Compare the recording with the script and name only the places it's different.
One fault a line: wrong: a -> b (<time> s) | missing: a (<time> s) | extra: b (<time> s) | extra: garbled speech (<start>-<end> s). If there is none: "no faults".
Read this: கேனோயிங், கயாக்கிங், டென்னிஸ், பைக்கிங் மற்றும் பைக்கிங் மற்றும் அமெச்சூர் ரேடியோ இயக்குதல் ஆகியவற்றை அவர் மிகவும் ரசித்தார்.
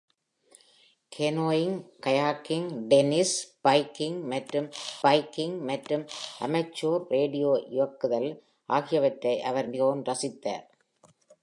no faults